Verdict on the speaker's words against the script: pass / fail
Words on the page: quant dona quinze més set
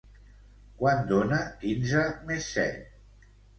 pass